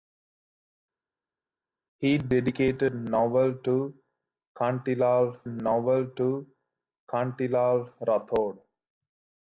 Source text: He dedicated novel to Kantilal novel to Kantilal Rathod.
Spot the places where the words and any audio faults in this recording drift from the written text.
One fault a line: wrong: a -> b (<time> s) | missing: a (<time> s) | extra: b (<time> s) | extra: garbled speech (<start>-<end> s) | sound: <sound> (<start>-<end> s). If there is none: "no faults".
no faults